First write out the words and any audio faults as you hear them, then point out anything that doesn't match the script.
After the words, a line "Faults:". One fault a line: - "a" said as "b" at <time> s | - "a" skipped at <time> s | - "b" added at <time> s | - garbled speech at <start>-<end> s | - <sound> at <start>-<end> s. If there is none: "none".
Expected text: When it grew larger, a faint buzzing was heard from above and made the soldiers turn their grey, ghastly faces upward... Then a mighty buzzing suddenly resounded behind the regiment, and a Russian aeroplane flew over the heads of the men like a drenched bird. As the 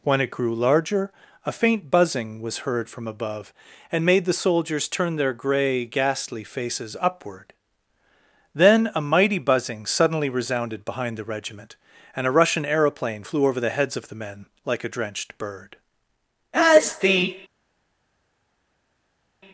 When it grew larger, a faint buzzing was heard from above and made the soldiers turn their grey, ghastly faces upward... Then a mighty buzzing suddenly resounded behind the regiment, and a Russian aeroplane flew over the heads of the men like a drenched bird. As the
Faults:
none